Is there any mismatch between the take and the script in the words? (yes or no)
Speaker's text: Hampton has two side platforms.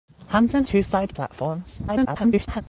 yes